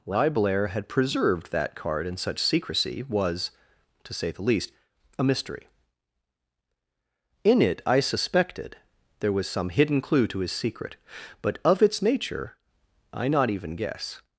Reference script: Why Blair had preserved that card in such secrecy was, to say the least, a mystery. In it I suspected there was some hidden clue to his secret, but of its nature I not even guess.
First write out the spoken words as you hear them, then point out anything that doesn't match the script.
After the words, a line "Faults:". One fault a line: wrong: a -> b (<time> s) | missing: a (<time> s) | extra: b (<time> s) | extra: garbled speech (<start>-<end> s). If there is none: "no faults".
Why Blair had preserved that card in such secrecy was, to say the least, a mystery. In it I suspected there was some hidden clue to his secret, but of its nature I not even guess.
Faults:
no faults